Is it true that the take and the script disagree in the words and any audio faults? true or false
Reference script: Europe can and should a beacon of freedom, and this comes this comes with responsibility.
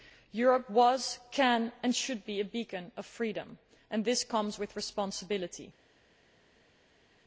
true